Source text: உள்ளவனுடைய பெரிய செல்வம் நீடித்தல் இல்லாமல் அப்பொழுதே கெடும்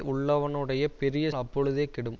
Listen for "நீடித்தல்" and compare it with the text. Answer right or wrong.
wrong